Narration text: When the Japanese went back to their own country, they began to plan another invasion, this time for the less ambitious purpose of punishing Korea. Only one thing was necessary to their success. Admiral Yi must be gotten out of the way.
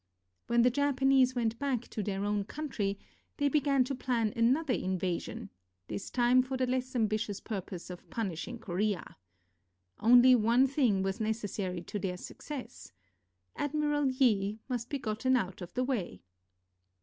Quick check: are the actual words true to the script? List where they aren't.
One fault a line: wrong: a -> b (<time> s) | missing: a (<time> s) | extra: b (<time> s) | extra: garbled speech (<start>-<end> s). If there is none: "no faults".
no faults